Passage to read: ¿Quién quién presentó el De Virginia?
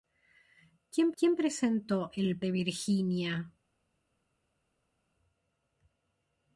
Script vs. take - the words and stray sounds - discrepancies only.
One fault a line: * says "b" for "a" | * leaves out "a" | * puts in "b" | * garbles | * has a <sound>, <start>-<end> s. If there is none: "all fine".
all fine